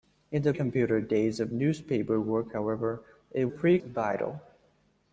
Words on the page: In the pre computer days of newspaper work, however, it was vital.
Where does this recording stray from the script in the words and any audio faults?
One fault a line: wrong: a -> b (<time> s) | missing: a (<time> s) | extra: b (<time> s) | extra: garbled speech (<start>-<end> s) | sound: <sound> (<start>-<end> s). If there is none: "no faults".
missing: pre (0.6 s)
wrong: was -> pre (3.5 s)